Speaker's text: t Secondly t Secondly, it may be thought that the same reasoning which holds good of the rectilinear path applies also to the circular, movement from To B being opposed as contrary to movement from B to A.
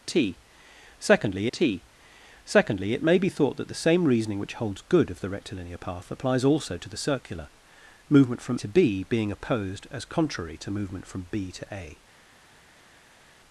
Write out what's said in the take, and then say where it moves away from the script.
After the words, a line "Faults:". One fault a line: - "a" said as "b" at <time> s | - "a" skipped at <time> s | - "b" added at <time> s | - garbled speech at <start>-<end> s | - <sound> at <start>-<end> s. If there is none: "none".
t Secondly t Secondly, it may be thought that the same reasoning which holds good of the rectilinear path applies also to the circular, movement from To B being opposed as contrary to movement from B to A.
Faults:
none